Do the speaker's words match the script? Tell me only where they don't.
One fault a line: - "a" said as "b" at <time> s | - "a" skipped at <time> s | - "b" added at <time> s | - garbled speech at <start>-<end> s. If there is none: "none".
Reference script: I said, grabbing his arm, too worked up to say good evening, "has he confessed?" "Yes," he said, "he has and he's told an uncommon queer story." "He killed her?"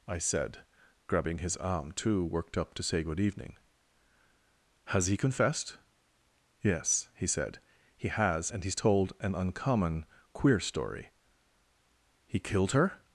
none